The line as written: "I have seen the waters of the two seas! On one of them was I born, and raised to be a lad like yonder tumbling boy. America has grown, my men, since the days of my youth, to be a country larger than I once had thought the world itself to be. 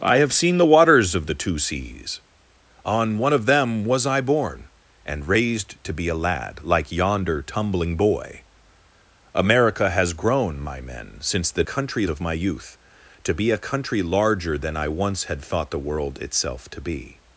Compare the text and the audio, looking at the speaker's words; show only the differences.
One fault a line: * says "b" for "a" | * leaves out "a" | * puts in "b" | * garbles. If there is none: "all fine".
* says "country" for "days"